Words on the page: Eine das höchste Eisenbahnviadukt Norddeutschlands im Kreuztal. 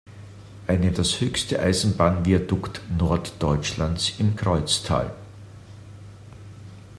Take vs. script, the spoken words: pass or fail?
pass